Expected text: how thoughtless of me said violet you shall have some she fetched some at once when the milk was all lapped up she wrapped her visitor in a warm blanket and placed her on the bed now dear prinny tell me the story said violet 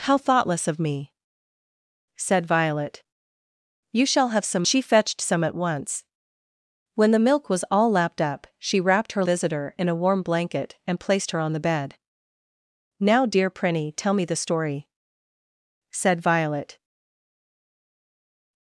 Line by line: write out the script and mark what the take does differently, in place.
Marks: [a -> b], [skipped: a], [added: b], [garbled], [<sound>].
how thoughtless of me said violet you shall have some she fetched some at once when the milk was all lapped up she wrapped her visitor in a warm blanket and placed her on the bed now dear prinny tell me the story said violet